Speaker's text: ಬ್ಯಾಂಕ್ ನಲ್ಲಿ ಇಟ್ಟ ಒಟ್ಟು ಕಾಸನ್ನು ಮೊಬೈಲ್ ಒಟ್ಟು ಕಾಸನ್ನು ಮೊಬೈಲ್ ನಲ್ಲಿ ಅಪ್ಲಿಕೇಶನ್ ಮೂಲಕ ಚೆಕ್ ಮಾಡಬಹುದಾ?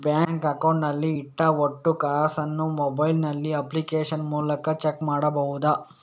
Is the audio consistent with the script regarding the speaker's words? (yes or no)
no